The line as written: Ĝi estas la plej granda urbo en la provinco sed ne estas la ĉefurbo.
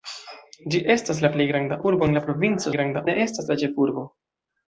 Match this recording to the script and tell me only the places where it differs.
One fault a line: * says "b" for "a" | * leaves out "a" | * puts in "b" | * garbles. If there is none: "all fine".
* says "granda" for "sed"